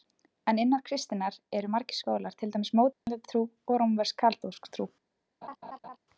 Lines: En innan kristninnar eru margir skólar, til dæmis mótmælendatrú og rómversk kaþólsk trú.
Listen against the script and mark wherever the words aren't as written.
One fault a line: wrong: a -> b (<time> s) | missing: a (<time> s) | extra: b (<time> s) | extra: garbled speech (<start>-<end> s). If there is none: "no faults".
no faults